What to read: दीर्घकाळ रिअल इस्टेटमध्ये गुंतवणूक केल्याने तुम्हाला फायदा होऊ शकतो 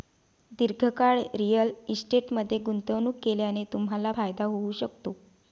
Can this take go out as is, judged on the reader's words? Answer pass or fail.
pass